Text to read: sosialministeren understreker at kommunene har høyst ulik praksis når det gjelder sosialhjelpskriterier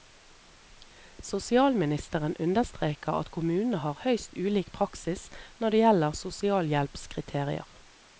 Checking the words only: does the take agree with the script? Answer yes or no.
yes